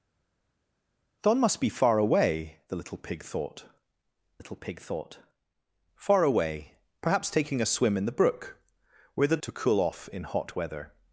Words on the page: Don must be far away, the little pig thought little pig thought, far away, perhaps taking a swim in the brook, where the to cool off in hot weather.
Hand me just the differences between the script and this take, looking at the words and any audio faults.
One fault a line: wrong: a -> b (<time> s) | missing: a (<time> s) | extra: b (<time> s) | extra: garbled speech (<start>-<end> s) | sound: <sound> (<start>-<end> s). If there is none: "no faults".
no faults